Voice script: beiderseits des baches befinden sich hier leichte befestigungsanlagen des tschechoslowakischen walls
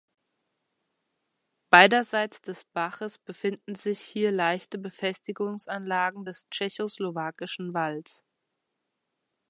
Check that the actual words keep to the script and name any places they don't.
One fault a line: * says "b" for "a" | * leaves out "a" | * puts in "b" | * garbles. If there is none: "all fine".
all fine